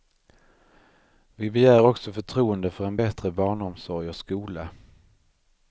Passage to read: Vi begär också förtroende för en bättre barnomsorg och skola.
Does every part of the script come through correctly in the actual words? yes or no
yes